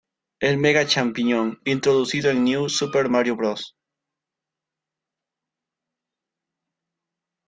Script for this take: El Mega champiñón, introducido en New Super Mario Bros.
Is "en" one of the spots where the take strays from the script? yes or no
no